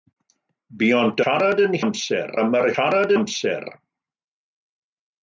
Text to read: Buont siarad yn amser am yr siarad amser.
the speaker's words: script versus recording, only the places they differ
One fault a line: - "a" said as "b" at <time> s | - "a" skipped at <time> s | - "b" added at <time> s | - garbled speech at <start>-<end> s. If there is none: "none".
none